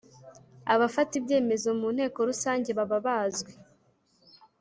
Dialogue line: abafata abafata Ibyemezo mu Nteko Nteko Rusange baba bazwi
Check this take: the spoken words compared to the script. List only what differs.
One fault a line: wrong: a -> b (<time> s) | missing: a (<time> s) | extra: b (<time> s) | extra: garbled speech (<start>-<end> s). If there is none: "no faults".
missing: abafata (1.1 s)
missing: Nteko (2.2 s)